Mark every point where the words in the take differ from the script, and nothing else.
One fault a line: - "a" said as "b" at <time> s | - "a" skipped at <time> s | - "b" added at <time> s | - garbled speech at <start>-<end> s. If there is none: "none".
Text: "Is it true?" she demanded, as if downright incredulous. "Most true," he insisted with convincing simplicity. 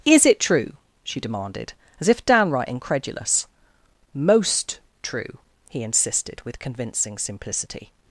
none